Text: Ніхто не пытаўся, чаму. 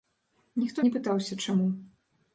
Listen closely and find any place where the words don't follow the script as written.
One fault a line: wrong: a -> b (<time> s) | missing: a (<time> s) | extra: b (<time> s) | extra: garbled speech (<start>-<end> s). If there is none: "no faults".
no faults